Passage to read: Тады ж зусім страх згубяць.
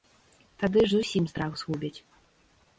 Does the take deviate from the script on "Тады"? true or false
false